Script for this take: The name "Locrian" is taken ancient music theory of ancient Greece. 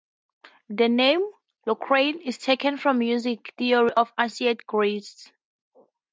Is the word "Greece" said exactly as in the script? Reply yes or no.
yes